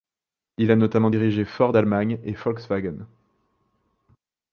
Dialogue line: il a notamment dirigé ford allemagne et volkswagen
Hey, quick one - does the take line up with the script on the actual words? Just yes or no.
yes